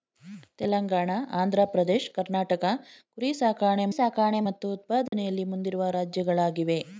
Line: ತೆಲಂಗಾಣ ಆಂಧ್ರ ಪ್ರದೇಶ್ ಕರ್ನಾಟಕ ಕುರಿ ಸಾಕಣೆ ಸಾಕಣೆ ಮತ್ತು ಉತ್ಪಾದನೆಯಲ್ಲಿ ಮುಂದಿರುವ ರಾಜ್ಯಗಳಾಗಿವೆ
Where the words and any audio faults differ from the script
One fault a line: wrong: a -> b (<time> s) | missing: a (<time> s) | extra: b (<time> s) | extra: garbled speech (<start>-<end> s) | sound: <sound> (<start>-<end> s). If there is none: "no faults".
sound: dropout (5.1-5.1 s)